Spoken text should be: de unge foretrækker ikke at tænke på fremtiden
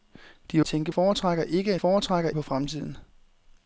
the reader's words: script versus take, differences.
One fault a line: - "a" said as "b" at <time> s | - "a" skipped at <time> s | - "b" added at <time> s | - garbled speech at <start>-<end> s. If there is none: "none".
- "unge" said as "tænke" at 0.6 s
- "tænke" said as "foretrækker" at 1.7 s